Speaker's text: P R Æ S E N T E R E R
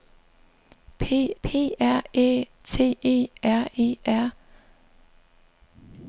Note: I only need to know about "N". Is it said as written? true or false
false